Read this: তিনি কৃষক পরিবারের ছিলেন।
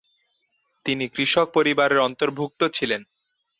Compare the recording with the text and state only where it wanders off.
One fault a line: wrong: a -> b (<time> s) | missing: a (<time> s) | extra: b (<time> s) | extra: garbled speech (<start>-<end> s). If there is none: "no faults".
extra: অন্তর্ভুক্ত (2.0 s)